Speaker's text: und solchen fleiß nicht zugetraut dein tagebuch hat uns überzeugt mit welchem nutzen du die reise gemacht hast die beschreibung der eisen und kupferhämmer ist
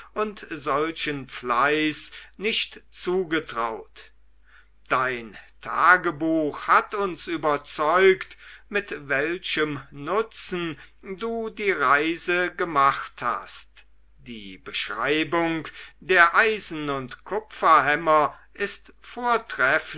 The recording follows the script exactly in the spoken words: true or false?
true